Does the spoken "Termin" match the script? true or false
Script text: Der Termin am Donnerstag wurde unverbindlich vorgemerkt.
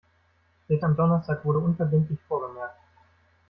false